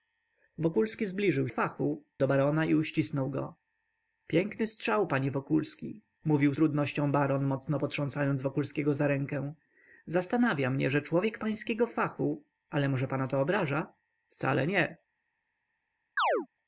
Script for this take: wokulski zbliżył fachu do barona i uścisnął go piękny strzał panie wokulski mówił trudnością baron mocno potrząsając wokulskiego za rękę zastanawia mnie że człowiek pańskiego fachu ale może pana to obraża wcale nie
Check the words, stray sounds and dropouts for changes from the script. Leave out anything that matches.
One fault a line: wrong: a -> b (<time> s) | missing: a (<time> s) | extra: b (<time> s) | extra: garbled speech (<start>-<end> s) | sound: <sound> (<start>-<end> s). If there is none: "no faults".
sound: chirp (16.2-16.5 s)